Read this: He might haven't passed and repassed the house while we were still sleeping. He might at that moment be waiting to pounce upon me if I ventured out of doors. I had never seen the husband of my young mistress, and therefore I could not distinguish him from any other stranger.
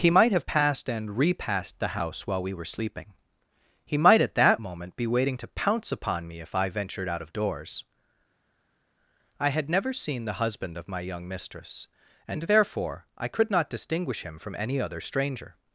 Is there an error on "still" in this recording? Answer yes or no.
yes